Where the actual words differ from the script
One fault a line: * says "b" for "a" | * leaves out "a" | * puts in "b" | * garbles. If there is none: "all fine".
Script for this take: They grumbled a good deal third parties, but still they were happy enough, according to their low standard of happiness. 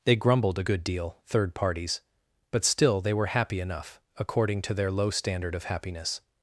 all fine